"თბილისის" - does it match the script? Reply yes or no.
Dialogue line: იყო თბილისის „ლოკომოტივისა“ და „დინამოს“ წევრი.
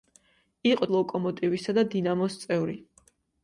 no